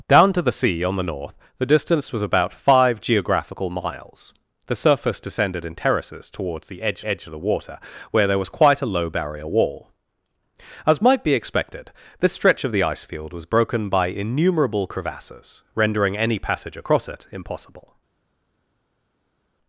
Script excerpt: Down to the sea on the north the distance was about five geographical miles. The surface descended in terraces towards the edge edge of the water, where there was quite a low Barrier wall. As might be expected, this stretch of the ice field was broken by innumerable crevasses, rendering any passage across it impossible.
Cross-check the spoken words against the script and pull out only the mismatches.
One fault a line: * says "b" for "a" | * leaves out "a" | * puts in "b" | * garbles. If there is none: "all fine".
all fine